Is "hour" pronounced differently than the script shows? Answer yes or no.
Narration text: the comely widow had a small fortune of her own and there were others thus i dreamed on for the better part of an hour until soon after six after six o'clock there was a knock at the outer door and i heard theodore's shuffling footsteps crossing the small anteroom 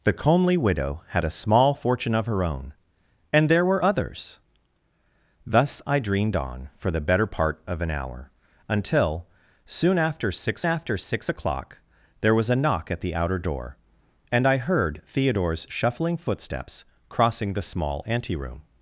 no